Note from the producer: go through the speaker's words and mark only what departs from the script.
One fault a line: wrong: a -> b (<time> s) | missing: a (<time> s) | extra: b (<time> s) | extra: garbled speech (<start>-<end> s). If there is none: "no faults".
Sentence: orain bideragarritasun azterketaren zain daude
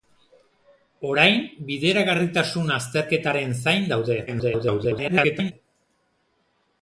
extra: garbled speech (4.3-5.5 s)